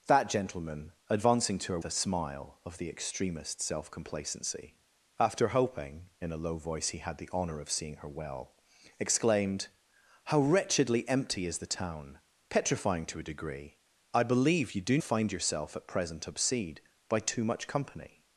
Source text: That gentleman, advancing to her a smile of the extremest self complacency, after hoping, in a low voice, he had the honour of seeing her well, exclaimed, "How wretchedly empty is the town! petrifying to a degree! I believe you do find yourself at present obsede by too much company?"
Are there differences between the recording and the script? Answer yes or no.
no